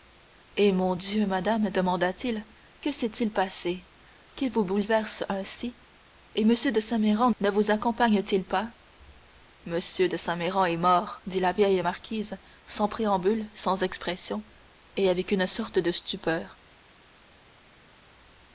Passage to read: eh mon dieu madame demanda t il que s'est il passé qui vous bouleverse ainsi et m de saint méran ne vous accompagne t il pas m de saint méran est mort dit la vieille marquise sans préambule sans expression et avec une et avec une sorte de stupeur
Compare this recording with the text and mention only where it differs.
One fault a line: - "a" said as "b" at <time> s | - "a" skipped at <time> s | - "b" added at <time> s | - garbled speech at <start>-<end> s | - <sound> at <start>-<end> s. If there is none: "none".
- "et avec une" skipped at 15.5 s